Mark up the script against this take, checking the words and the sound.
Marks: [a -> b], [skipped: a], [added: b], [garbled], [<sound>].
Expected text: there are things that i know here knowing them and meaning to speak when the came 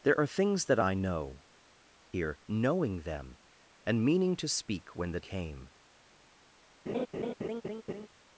there are things that i know here knowing them and meaning to speak when the came [laugh]